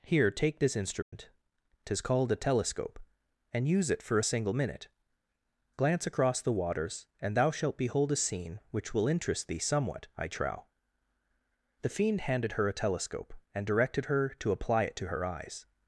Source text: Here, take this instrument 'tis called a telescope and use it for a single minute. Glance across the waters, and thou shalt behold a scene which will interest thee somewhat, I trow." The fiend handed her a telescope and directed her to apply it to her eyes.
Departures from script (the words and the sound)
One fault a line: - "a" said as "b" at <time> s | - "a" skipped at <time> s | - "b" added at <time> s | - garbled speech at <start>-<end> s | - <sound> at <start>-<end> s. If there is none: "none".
- dropout at 1.0-1.1 s